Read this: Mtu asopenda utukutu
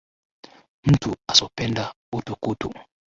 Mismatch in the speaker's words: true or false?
false